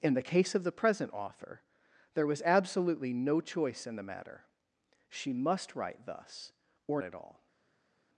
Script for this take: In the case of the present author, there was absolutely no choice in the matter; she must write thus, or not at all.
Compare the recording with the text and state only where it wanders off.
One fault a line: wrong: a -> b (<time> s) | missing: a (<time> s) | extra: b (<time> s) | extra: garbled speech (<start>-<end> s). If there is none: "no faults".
missing: not (7.0 s)